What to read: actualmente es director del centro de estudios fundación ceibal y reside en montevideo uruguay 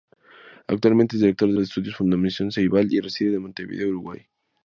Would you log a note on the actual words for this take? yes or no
yes